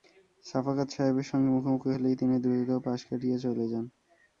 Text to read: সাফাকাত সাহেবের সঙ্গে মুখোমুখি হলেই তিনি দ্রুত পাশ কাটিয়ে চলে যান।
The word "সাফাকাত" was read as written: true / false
true